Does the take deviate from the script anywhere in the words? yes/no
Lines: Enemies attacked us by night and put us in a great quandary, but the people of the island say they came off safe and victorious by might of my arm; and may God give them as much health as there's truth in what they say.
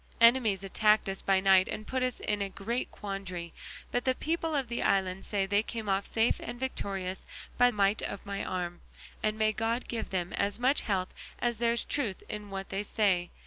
no